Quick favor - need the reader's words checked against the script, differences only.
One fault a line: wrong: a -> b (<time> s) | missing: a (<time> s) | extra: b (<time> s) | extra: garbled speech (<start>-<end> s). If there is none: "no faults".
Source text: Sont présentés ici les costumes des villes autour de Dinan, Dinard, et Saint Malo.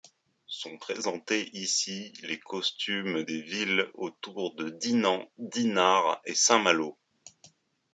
no faults